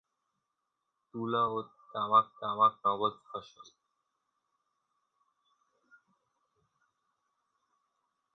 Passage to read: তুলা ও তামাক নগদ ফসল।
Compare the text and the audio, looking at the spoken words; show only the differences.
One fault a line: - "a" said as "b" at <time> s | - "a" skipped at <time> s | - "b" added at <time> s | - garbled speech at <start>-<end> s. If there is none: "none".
- "তামাক" added at 2.4 s